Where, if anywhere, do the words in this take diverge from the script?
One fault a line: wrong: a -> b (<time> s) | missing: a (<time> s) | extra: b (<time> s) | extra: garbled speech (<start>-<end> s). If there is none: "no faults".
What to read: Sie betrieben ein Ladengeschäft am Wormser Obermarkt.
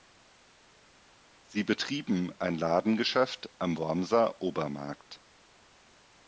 no faults